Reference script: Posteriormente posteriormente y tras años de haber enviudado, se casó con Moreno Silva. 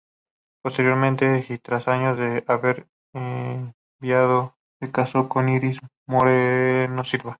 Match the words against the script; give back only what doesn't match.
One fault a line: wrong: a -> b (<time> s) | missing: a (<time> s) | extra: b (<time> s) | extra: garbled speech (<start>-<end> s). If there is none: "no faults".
missing: posteriormente (1.4 s)
extra: Iris (5.5 s)